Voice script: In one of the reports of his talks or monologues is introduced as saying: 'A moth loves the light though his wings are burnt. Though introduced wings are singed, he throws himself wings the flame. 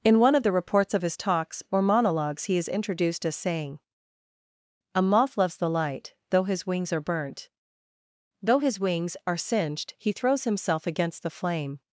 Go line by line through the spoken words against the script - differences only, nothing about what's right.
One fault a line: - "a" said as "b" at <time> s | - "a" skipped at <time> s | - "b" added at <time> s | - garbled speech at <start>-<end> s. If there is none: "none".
- "he" added at 2.5 s
- "introduced" said as "his" at 8.6 s
- "wings" said as "against" at 10.9 s